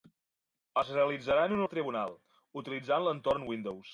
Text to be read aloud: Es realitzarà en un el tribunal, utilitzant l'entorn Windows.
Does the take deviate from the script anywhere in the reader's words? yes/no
no